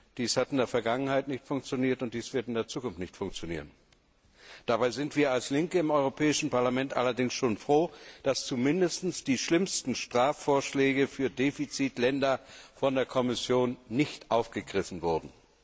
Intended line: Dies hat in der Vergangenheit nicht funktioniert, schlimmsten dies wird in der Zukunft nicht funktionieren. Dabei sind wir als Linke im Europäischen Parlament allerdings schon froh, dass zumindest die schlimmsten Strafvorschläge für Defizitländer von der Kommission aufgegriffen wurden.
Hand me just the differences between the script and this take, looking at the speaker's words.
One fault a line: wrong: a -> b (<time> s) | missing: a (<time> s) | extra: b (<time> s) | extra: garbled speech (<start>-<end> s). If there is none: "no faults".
wrong: schlimmsten -> und (2.0 s)
extra: nicht (13.9 s)